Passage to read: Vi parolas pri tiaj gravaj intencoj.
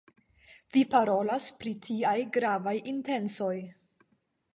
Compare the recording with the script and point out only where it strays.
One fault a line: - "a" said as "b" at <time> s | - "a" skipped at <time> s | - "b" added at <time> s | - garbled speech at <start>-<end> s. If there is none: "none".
none